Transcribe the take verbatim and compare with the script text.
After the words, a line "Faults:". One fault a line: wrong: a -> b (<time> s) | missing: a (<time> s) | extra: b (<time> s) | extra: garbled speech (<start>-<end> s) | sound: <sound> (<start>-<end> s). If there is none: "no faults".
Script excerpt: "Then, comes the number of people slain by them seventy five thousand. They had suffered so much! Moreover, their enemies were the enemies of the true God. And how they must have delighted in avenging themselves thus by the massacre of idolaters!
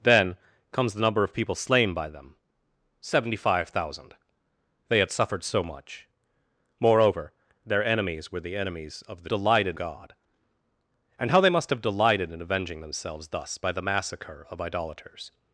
"Then, comes the number of people slain by them seventy five thousand. They had suffered so much! Moreover, their enemies were the enemies of the delighted God. And how they must have delighted in avenging themselves thus by the massacre of idolaters!
Faults:
wrong: true -> delighted (9.3 s)